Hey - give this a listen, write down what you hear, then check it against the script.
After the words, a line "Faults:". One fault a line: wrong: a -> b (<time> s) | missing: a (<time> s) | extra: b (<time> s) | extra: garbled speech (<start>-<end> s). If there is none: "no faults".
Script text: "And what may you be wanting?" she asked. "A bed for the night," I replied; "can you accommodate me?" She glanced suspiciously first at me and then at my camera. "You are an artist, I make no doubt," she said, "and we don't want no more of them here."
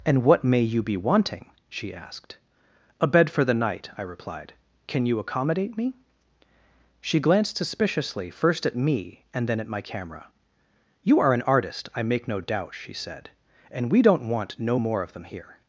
"And what may you be wanting?" she asked. "A bed for the night," I replied; "can you accommodate me?" She glanced suspiciously first at me and then at my camera. "You are an artist, I make no doubt," she said, "and we don't want no more of them here."
Faults:
no faults